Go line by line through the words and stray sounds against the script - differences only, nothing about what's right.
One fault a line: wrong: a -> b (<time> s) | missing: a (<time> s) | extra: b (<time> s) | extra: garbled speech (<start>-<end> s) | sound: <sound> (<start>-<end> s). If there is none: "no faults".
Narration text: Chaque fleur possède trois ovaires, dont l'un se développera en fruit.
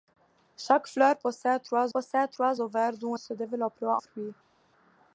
extra: possède trois (1.9 s)
missing: l'un (3.1 s)
missing: en (4.0 s)